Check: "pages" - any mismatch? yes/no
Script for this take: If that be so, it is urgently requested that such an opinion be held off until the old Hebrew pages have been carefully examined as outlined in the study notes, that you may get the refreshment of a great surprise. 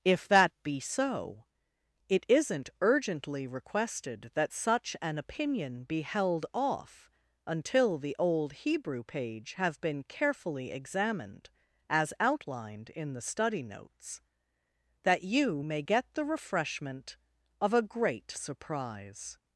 yes